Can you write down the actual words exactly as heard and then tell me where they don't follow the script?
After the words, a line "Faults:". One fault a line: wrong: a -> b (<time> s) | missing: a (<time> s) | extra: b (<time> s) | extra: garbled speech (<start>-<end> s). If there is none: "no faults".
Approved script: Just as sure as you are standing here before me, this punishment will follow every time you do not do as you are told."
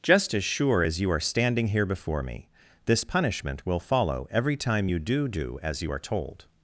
Just as sure as you are standing here before me, this punishment will follow every time you do do as you are told."
Faults:
missing: not (5.3 s)